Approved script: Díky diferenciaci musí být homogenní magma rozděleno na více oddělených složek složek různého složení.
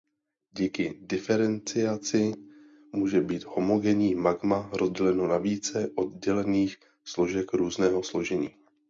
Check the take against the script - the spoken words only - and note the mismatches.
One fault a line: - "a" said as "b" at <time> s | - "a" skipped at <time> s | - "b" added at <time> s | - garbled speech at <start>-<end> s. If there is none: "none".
- "musí" said as "může" at 2.9 s
- "složek" skipped at 7.5 s